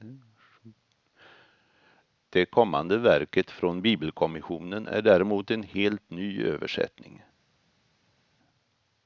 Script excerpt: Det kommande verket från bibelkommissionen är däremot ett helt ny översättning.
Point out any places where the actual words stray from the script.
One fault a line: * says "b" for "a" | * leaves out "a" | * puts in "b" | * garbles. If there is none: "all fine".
* says "en" for "ett"